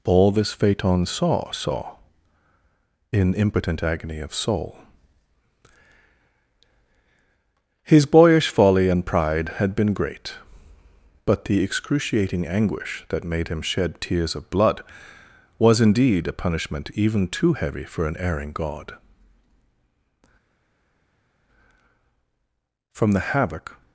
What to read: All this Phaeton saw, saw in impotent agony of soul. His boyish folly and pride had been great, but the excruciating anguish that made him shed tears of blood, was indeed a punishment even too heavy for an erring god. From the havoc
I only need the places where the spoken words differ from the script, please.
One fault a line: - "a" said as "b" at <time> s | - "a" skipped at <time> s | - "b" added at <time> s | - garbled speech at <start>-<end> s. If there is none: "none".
none